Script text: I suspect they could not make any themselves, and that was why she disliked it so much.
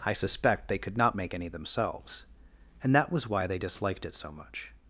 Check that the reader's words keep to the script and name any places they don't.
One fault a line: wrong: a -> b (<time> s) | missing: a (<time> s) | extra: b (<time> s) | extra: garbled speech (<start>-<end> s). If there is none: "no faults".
wrong: she -> they (3.5 s)